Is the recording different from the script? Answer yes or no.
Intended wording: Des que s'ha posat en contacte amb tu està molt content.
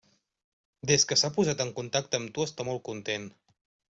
no